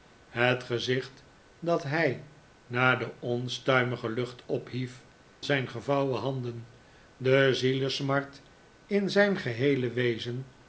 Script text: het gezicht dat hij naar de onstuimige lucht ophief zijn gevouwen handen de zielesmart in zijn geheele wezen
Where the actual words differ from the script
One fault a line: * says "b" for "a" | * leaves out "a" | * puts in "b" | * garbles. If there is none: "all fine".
all fine